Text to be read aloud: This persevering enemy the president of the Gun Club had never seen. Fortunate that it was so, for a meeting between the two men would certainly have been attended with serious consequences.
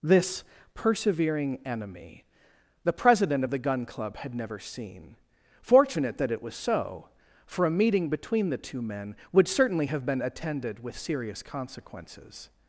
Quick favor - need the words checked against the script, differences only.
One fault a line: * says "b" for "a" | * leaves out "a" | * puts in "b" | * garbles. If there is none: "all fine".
all fine